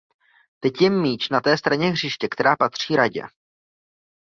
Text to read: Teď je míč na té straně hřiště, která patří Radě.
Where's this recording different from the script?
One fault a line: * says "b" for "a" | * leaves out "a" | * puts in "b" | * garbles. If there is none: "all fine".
all fine